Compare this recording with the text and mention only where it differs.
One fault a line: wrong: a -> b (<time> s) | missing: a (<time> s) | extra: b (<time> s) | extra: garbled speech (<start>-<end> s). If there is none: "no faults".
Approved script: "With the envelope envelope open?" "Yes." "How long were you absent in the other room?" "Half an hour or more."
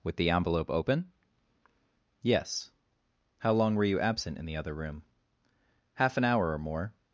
missing: envelope (0.7 s)